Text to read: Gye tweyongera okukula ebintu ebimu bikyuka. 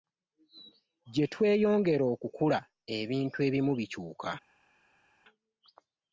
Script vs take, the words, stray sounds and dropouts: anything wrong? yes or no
no